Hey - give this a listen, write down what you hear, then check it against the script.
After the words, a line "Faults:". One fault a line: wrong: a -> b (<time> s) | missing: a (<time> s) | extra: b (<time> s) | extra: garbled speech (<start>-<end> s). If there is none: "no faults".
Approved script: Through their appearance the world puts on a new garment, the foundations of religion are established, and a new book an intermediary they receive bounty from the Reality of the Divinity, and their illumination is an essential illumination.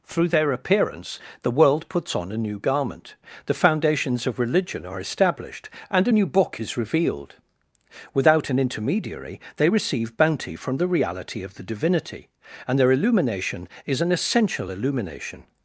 Through their appearance the world puts on a new garment, the foundations of religion are established, and a new book is revealed. Without an intermediary they receive bounty from the Reality of the Divinity, and their illumination is an essential illumination.
Faults:
extra: is revealed Without (6.6 s)